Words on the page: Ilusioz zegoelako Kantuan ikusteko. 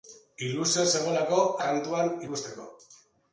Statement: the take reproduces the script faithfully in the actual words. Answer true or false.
true